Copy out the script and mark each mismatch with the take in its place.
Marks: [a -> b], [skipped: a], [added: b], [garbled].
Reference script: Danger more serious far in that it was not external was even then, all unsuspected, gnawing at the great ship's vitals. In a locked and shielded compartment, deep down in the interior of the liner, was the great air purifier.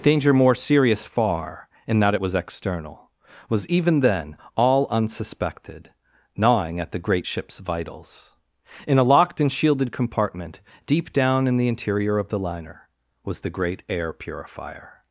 Danger more serious far in that it was [skipped: not] external was even then, all unsuspected, gnawing at the great ship's vitals. In a locked and shielded compartment, deep down in the interior of the liner, was the great air purifier.